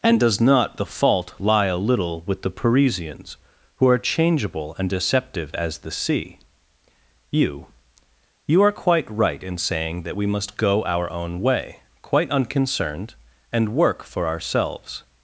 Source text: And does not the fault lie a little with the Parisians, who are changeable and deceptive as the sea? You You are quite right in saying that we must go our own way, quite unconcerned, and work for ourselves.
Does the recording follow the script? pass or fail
pass